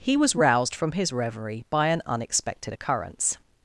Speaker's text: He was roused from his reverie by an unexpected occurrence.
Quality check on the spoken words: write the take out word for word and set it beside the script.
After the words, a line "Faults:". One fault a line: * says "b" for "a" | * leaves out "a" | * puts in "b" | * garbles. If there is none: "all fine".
He was roused from his reverie by an unexpected occurrence.
Faults:
all fine